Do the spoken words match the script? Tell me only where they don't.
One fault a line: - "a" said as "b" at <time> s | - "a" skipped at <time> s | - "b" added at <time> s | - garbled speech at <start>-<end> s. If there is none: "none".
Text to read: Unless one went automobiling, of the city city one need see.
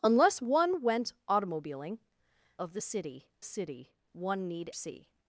none